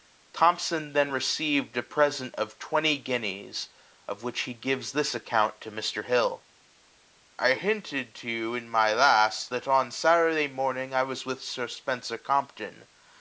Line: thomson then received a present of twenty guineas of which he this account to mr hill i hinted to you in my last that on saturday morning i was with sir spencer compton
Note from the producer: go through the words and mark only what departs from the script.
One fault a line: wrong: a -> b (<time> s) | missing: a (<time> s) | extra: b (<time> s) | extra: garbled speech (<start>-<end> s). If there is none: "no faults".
extra: gives (4.5 s)